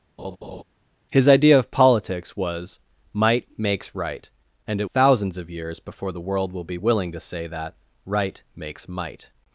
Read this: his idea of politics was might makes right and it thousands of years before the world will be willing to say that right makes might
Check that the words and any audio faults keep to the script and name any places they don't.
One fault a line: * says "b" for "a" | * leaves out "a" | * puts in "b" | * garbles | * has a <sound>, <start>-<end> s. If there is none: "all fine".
* has a laugh, 0.2-0.6 s